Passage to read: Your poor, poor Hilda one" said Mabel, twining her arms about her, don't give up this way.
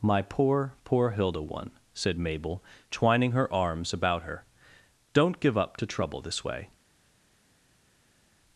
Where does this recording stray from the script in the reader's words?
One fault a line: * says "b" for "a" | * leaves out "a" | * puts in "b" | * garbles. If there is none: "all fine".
* says "My" for "Your"
* puts in "to trouble"